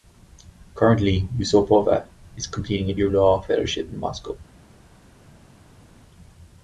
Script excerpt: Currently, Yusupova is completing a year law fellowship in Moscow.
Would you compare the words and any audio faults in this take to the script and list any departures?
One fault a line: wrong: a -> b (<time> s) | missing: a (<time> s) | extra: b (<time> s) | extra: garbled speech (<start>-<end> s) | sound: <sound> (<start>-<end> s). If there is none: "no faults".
no faults